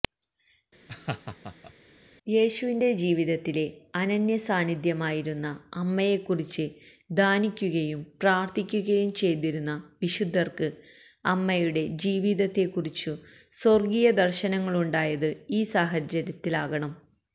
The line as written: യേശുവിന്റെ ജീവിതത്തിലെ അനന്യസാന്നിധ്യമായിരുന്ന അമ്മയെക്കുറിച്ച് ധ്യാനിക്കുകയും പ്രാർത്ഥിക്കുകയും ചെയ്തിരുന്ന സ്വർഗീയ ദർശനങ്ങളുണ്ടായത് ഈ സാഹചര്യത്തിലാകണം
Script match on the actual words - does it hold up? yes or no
no